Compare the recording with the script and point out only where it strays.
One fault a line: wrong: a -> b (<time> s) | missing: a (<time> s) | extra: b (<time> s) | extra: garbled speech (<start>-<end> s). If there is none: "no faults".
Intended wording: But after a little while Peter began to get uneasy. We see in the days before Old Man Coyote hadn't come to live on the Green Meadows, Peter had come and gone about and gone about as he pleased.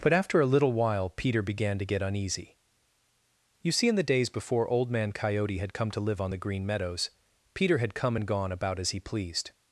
wrong: We -> You (3.6 s)
wrong: hadn't -> had (5.6 s)
missing: and gone about (8.8 s)